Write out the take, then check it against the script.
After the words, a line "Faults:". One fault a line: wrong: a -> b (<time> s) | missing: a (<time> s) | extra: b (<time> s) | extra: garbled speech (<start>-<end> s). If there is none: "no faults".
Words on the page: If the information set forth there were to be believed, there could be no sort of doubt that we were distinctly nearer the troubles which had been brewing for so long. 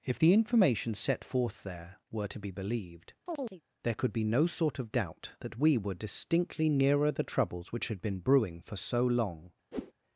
If the information set forth there were to be believed, there could be no sort of doubt that we were distinctly nearer the troubles which had been brewing for so long.
Faults:
no faults